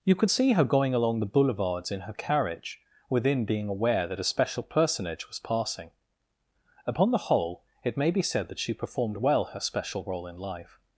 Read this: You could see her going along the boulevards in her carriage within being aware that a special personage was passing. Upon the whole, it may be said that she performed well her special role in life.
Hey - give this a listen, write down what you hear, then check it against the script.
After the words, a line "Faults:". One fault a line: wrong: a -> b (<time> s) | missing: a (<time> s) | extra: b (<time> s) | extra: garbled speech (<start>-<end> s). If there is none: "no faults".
You could see her going along the boulevards in her carriage within being aware that a special personage was passing. Upon the whole, it may be said that she performed well her special role in life.
Faults:
no faults